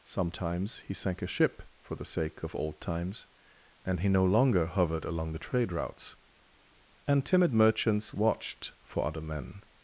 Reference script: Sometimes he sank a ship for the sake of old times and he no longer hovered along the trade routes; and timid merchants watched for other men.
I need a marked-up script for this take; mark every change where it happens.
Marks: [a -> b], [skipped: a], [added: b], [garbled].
Sometimes he sank a ship for the sake of old times and he no longer hovered along the trade routes; and timid merchants watched for other men.